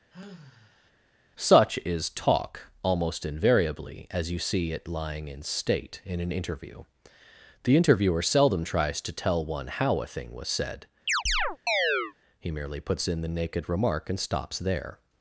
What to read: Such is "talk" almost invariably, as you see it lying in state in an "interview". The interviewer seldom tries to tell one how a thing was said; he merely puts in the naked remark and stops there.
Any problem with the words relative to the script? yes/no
no